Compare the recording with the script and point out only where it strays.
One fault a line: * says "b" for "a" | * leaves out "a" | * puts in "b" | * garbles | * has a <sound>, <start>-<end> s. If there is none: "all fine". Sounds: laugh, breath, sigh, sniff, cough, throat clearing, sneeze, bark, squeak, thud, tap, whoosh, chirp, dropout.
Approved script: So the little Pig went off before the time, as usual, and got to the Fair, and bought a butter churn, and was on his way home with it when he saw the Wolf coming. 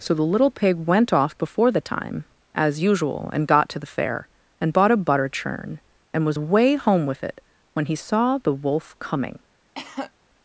* leaves out "on his"
* has a cough, 9.8-10.1 s